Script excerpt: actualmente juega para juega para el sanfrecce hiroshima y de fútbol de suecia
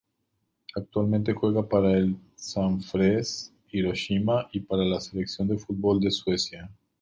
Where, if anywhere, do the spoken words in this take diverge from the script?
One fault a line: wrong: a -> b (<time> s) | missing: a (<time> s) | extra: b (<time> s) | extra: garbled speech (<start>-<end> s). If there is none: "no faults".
missing: juega para (1.9 s)
extra: para la selección (4.6 s)